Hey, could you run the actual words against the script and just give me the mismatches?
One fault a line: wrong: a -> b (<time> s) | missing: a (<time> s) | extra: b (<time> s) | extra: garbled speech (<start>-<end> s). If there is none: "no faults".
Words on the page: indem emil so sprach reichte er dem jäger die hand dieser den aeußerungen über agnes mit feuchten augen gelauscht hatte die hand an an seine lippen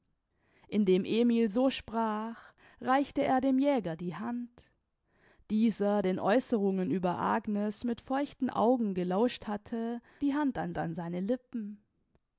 no faults